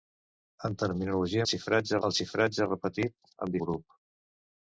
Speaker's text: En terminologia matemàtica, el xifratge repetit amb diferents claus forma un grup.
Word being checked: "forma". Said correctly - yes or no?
no